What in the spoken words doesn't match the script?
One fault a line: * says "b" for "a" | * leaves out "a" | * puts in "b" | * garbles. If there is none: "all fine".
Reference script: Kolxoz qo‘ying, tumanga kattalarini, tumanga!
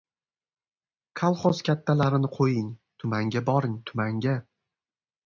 * puts in "kattalarini"
* says "boring" for "kattalarini"